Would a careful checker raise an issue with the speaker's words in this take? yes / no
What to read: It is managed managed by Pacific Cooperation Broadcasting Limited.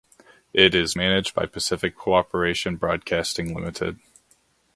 yes